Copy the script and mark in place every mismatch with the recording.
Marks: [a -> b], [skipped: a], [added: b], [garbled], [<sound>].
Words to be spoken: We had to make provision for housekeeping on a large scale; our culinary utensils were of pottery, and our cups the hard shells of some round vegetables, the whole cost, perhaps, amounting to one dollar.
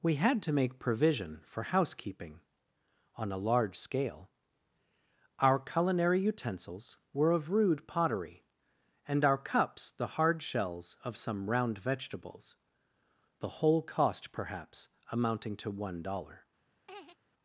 We had to make provision for housekeeping on a large scale; our culinary utensils were of [added: rude] pottery, and our cups the hard shells of some round vegetables, the whole cost, perhaps, amounting to one dollar. [laugh]